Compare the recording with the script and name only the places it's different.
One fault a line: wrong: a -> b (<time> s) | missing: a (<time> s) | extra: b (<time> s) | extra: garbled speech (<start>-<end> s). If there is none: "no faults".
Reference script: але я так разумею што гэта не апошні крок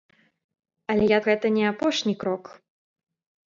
missing: так разумею што (1.2 s)